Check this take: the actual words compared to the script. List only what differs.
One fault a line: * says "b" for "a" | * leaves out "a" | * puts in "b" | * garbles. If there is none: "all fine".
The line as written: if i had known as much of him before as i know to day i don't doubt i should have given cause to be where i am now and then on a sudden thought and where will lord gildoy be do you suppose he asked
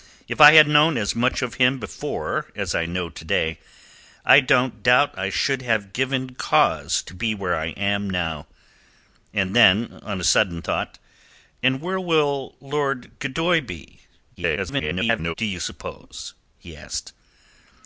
* garbles